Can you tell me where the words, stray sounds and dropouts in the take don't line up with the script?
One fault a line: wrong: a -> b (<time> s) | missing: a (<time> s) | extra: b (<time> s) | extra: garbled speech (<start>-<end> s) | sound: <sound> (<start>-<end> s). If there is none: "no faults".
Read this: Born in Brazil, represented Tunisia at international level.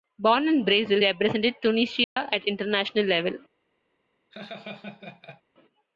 sound: dropout (2.0-2.2 s)
sound: laugh (4.3-5.4 s)